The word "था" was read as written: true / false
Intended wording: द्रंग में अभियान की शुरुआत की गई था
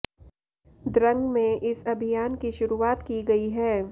false